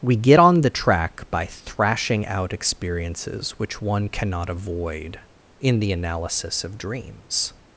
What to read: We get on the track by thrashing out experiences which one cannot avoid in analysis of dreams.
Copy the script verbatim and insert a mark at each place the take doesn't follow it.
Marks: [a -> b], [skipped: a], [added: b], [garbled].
We get on the track by thrashing out experiences which one cannot avoid in [added: the] analysis of dreams.